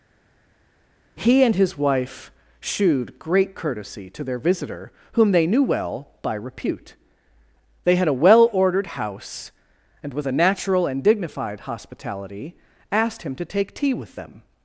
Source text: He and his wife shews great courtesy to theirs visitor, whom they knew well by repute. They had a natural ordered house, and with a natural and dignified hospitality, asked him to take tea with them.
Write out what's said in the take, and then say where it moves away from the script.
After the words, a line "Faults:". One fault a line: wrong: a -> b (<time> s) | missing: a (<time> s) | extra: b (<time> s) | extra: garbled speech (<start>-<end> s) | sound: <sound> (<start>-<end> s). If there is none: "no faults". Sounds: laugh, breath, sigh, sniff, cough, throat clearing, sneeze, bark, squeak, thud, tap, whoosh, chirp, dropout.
He and his wife shewed great courtesy to their visitor, whom they knew well by repute. They had a well ordered house, and with a natural and dignified hospitality, asked him to take tea with them.
Faults:
wrong: shews -> shewed (2.6 s)
wrong: theirs -> their (4.2 s)
wrong: natural -> well (8.1 s)